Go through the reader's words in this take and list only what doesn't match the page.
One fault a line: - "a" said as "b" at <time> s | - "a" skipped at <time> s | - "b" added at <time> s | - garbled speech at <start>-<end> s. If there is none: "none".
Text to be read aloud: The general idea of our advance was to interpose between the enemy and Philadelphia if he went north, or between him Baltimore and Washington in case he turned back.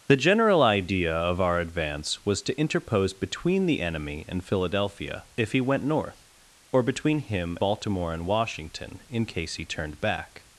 none